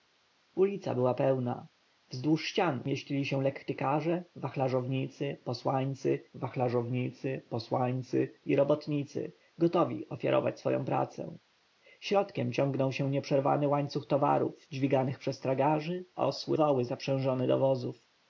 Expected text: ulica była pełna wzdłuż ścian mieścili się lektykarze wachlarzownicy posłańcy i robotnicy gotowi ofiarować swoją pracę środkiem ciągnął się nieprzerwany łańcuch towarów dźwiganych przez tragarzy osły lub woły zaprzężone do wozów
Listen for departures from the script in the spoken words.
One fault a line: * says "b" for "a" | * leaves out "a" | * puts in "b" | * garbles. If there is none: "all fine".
* puts in "wachlarzownicy posłańcy"
* leaves out "lub"